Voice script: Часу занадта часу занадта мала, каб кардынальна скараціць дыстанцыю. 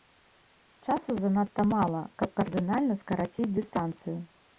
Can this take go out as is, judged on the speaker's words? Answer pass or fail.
fail